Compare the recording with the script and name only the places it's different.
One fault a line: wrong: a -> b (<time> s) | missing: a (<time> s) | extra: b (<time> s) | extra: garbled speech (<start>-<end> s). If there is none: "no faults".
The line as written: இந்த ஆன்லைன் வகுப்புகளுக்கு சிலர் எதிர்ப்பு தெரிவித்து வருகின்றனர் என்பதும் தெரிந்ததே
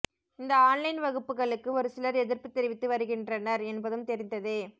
extra: ஒரு (1.7 s)